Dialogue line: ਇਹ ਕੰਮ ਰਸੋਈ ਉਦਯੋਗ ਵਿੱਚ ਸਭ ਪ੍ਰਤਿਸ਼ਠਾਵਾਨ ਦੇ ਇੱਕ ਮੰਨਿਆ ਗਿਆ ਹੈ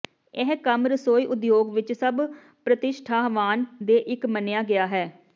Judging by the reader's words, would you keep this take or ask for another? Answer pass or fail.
pass